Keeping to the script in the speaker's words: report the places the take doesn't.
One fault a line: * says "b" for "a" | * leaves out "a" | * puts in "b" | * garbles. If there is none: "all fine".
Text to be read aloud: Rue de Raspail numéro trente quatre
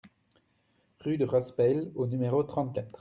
* puts in "au"